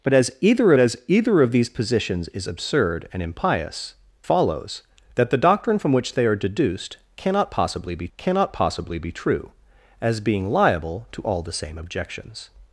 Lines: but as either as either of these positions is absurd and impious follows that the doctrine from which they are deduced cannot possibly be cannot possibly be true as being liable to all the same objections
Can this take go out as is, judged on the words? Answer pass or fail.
pass